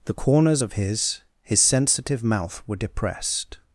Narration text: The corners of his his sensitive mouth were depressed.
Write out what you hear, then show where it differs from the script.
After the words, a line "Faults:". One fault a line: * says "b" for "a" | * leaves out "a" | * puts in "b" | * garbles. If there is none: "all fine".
The corners of his his sensitive mouth were depressed.
Faults:
all fine